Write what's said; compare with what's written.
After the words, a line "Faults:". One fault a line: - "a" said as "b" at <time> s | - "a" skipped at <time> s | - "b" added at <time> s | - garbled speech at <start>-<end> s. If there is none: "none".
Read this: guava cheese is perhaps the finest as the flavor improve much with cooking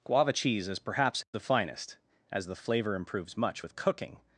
guava cheese is perhaps the finest as the flavor improves much with cooking
Faults:
- "improve" said as "improves" at 3.0 s